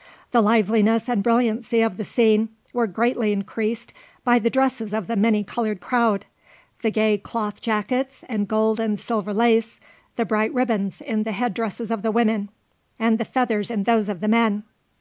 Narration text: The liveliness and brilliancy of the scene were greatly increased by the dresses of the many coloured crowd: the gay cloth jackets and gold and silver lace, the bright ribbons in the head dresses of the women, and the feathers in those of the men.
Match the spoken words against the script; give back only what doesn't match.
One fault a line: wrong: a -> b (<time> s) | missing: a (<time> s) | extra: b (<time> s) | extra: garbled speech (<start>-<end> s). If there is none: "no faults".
no faults